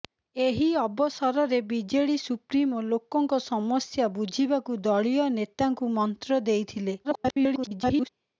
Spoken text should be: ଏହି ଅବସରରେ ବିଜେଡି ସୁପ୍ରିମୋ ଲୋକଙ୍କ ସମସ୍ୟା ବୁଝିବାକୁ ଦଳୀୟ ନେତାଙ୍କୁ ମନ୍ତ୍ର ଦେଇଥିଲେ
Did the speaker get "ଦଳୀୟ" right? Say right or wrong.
right